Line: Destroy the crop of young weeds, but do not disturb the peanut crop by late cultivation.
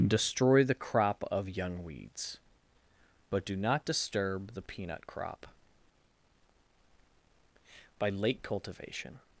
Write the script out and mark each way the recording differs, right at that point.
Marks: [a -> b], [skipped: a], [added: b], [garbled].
Destroy the crop of young weeds, but do not disturb the peanut crop by late cultivation.